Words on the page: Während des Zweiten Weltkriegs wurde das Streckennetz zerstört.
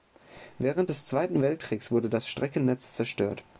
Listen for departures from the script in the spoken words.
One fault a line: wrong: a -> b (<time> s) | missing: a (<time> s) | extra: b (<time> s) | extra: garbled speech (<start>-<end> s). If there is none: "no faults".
no faults